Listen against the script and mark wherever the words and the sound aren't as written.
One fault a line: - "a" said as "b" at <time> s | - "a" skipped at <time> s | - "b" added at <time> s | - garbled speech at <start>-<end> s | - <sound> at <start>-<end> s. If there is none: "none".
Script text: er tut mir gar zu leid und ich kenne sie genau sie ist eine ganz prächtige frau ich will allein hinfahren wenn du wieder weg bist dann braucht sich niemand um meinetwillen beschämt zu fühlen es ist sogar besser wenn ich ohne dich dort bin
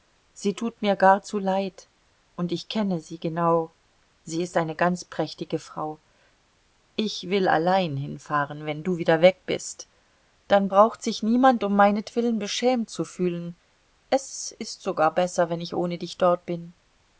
- "er" said as "sie" at 0.3 s